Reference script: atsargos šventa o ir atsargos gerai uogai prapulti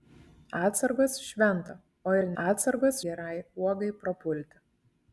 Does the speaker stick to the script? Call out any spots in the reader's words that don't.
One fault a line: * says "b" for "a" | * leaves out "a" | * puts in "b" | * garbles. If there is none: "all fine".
all fine